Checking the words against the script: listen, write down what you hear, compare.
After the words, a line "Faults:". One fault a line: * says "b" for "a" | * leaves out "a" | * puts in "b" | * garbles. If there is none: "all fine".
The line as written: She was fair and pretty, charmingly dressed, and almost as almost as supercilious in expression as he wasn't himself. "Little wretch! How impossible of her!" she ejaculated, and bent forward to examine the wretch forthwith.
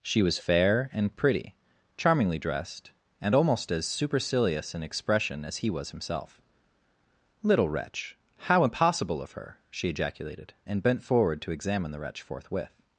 She was fair and pretty, charmingly dressed, and almost as supercilious in expression as he was himself. "Little wretch! How impossible of her!" she ejaculated, and bent forward to examine the wretch forthwith.
Faults:
* leaves out "almost as"
* says "was" for "wasn't"